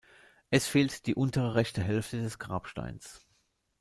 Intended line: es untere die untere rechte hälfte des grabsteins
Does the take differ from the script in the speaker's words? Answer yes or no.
yes